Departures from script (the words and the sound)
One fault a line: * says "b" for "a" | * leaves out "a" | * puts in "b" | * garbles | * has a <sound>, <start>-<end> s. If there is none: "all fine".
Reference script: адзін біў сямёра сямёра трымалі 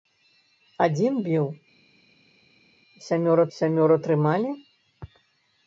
all fine